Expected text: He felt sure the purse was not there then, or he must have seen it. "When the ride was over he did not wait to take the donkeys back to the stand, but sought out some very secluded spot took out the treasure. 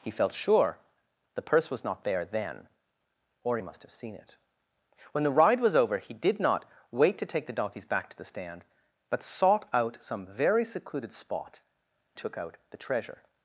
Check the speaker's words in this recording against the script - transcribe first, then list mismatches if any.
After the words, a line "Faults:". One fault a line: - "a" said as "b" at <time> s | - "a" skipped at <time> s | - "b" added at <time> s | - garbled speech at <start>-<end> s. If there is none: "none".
He felt sure the purse was not there then, or he must have seen it. "When the ride was over he did not wait to take the donkeys back to the stand, but sought out some very secluded spot took out the treasure.
Faults:
none